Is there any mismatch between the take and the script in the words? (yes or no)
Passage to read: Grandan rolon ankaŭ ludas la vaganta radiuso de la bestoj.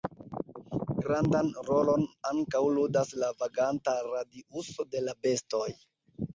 no